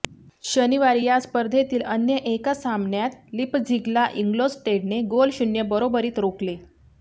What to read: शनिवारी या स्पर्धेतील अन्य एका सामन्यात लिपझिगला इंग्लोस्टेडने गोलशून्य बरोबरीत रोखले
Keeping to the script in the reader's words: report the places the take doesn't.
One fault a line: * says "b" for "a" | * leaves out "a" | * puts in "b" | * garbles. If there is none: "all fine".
all fine